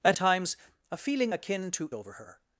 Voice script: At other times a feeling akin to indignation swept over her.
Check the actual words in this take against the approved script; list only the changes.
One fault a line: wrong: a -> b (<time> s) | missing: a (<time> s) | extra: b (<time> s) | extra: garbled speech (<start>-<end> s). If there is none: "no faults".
missing: other (0.2 s)
missing: indignation swept (1.9 s)